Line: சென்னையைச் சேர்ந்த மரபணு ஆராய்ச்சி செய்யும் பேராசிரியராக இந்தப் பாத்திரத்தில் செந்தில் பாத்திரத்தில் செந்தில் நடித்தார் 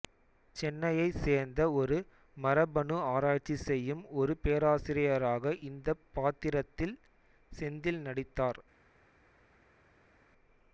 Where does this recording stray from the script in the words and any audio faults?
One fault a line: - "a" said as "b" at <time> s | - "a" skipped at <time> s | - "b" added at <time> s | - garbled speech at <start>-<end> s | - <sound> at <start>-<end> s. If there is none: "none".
- "ஒரு" added at 1.7 s
- "ஒரு" added at 4.2 s
- "பாத்திரத்தில் செந்தில்" skipped at 8.0 s